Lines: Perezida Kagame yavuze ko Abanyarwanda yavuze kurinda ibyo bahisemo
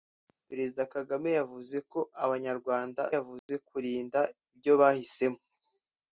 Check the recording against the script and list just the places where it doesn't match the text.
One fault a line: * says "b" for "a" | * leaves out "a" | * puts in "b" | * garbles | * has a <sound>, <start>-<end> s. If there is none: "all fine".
* has a dropout, 3.4-3.5 s